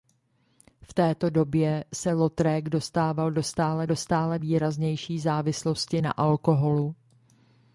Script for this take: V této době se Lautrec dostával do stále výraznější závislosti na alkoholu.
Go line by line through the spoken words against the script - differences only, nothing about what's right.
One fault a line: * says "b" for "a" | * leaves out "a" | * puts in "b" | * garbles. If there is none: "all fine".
* puts in "do stále"